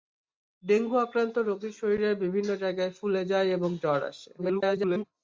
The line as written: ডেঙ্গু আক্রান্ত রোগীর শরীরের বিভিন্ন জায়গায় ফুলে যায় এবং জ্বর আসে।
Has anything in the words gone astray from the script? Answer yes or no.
yes